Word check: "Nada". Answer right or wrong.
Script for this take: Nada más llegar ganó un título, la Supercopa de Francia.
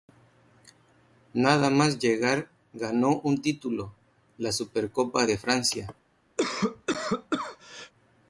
right